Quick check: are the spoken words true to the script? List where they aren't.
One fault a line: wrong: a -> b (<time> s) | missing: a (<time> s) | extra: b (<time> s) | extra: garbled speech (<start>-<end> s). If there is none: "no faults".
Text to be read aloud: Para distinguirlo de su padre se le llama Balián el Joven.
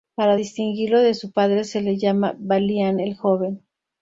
no faults